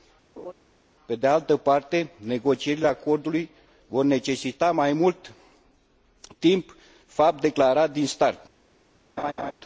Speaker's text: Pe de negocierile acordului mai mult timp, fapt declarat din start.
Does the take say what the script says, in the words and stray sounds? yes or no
no